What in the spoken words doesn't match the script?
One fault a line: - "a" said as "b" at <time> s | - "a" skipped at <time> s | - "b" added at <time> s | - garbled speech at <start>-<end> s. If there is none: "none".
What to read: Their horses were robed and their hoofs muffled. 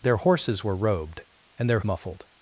- "hoofs" skipped at 1.8 s